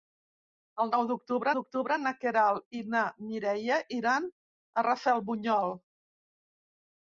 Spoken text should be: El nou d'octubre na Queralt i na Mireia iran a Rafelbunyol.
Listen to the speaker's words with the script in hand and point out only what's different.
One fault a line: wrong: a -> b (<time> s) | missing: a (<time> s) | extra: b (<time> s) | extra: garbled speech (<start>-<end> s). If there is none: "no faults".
extra: d'octubre (1.6 s)